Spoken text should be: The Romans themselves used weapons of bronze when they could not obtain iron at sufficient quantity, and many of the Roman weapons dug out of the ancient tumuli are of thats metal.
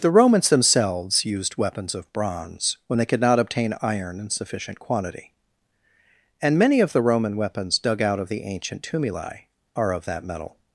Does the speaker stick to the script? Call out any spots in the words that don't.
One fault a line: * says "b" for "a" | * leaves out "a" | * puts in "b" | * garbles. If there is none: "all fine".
* says "in" for "at"
* says "that" for "thats"